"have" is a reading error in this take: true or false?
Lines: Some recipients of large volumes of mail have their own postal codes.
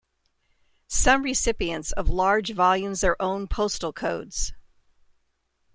true